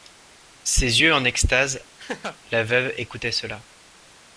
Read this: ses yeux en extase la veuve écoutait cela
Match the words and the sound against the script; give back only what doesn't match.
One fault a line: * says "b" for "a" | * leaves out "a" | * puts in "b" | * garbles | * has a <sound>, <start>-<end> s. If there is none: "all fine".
* has a laugh, 2.0-2.4 s